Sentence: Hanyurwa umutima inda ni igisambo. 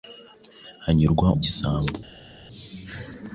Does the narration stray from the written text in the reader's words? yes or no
yes